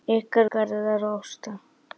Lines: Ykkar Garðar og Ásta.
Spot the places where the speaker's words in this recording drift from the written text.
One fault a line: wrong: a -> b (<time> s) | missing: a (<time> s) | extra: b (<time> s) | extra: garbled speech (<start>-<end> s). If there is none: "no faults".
no faults